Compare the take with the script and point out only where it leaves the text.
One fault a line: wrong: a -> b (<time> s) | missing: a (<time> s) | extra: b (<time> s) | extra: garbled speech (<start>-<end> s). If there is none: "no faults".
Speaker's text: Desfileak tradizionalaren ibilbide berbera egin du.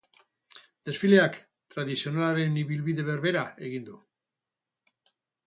no faults